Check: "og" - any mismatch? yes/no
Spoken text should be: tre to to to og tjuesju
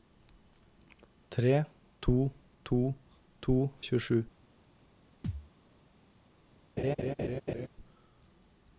no